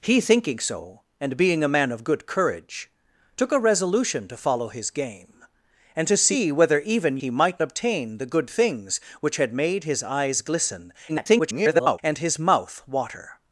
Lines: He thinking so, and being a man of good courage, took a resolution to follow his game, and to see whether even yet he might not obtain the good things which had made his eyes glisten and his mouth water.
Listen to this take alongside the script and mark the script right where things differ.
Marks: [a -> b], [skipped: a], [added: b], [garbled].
He thinking so, and being a man of good courage, took a resolution to follow his game, and to see whether even [skipped: yet] he might [skipped: not] obtain the good things which had made his eyes glisten [garbled] and his mouth water.